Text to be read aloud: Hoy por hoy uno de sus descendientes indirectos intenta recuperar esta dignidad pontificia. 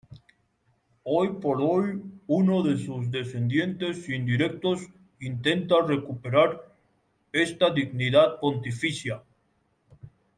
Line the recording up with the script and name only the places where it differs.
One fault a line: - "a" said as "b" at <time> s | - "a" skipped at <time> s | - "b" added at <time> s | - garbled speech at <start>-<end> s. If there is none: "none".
none